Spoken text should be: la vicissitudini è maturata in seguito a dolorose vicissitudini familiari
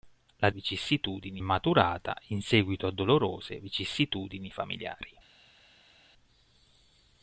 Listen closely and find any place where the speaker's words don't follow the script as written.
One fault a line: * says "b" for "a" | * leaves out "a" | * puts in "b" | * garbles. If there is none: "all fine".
all fine